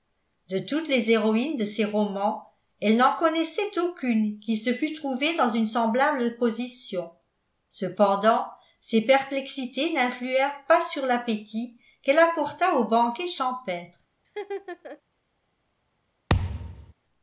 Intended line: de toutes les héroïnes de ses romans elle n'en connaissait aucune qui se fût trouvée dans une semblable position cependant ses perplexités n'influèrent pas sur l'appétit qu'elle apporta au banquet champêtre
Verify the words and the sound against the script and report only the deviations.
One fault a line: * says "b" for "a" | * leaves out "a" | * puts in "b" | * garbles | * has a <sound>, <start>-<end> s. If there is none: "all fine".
* has a laugh, 14.2-15.0 s
* has a thud, 16.3-16.9 s